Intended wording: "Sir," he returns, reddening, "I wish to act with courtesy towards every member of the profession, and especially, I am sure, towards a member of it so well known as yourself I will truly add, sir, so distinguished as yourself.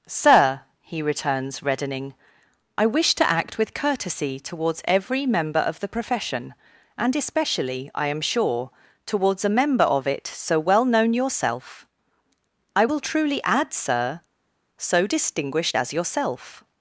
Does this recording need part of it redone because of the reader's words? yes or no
yes